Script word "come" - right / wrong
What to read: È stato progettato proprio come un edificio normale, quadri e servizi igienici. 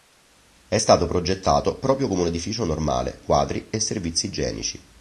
right